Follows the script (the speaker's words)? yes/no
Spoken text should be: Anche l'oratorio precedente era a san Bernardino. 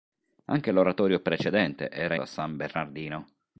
yes